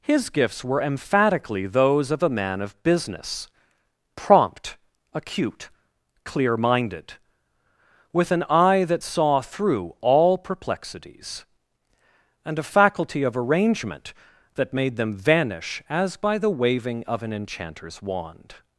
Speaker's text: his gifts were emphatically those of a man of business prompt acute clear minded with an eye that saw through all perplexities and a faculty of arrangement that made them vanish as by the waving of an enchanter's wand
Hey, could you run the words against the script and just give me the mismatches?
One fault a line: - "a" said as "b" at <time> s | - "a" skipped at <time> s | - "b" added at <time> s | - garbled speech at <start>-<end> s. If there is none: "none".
none